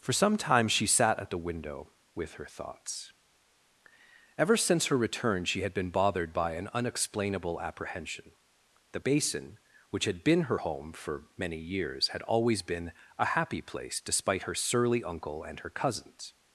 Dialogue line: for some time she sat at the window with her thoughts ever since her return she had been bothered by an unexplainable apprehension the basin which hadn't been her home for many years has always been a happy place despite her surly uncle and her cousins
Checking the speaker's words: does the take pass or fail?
fail